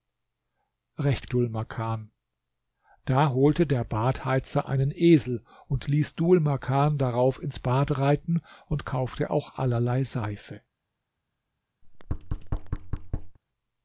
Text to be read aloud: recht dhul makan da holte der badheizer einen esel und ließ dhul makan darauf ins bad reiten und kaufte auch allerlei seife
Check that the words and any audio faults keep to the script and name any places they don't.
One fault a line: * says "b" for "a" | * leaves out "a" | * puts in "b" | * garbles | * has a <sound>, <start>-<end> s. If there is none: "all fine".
* has a thud, 11.8-13.4 s